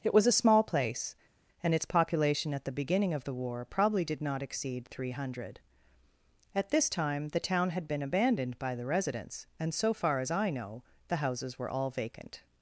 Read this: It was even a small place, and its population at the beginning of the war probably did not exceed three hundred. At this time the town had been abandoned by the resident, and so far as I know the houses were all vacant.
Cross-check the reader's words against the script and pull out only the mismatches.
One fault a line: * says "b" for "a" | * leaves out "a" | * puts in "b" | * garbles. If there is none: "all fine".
* leaves out "even"
* says "residents" for "resident"